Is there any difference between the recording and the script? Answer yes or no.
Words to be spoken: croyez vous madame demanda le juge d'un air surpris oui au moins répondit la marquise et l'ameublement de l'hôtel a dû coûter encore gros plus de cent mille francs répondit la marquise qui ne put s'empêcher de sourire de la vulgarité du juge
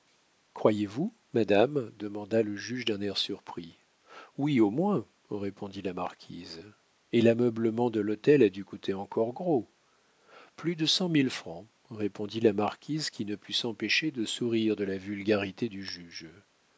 no